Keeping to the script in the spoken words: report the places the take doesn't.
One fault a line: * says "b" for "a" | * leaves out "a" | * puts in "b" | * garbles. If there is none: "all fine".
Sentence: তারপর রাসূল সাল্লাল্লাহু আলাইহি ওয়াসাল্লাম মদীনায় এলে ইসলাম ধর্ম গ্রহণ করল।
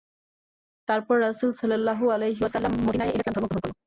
all fine